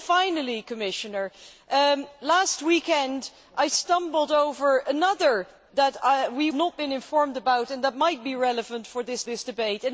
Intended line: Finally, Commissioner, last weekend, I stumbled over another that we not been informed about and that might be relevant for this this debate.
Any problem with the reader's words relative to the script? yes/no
no